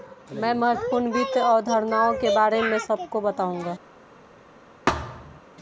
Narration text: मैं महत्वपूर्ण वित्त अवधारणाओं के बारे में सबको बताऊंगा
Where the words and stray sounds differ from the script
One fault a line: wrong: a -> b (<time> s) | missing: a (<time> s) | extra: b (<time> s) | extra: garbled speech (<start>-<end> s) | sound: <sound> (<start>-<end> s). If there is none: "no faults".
sound: thud (4.9-5.4 s)